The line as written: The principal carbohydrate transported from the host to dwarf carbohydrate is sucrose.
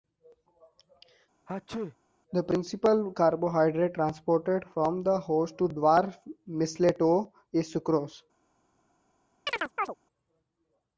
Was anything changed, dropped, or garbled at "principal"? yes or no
no